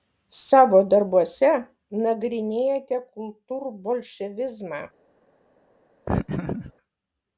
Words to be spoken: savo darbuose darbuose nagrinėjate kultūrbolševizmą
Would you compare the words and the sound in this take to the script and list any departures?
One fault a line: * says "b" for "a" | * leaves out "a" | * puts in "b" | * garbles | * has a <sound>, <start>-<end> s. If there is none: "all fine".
* leaves out "darbuose"
* has a laugh, 6.1-6.7 s